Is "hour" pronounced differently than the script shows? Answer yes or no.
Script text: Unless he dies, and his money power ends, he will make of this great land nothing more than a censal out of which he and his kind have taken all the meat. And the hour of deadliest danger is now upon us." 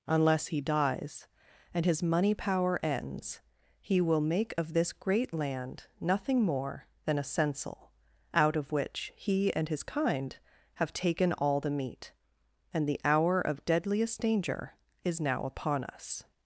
no